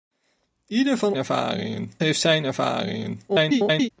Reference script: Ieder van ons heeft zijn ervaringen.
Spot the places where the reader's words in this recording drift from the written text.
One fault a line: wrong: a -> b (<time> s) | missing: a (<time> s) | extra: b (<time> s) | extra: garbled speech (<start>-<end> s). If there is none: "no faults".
wrong: ons -> ervaringen (1.1 s)
extra: garbled speech (3.3-3.9 s)